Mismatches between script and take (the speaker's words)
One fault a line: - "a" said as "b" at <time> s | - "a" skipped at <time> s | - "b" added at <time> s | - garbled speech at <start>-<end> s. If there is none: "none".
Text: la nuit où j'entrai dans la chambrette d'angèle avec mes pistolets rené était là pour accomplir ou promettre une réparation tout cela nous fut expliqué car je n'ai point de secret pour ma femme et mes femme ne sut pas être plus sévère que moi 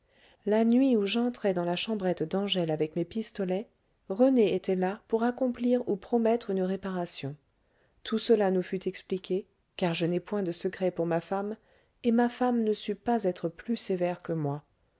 - "mes" said as "ma" at 12.1 s